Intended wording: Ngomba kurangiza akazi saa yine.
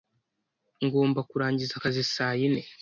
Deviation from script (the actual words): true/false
false